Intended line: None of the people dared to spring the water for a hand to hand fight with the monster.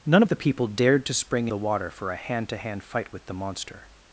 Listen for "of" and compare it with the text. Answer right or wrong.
right